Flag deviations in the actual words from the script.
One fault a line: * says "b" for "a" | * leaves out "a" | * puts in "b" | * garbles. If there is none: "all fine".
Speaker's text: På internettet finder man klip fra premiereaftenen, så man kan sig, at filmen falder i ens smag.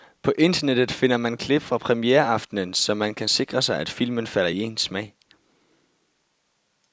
* puts in "sikre"